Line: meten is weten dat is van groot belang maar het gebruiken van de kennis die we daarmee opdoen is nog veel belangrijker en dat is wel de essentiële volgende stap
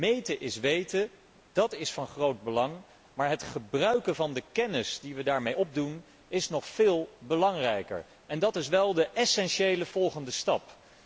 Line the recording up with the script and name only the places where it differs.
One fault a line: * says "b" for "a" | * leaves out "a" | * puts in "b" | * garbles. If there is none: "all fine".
all fine